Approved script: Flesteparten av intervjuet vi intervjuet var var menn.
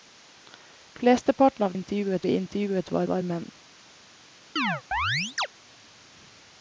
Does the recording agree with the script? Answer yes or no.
yes